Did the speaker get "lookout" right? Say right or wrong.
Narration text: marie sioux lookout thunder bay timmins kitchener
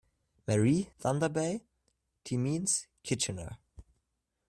wrong